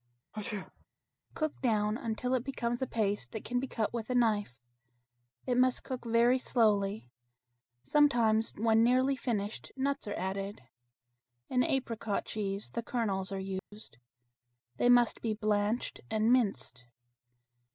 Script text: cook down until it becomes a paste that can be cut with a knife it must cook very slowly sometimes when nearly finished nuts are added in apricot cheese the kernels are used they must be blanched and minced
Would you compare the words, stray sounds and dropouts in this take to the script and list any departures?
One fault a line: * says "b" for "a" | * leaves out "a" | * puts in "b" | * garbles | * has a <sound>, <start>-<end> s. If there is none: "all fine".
* has a sneeze, 0.3-0.9 s
* has a dropout, 13.6-13.7 s